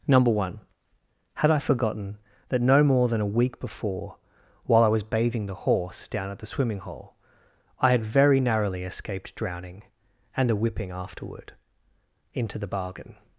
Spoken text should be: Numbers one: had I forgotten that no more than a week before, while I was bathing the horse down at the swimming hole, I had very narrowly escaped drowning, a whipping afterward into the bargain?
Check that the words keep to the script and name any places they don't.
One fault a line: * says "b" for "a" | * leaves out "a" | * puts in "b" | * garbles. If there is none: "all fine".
* says "Number" for "Numbers"
* puts in "and"